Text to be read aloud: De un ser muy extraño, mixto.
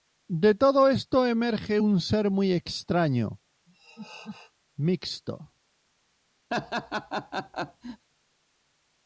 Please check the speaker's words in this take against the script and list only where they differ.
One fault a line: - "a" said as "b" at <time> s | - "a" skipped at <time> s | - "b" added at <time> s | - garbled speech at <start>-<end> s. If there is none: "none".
- "todo esto emerge" added at 0.6 s